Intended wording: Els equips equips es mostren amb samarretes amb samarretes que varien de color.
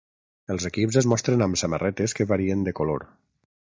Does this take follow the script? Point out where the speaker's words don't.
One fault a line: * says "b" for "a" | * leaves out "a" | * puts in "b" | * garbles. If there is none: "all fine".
* leaves out "equips"
* leaves out "amb samarretes"